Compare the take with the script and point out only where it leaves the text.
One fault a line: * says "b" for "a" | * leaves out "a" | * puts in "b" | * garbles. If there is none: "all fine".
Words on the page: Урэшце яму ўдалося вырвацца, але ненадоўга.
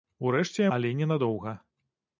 * leaves out "яму ўдалося вырвацца"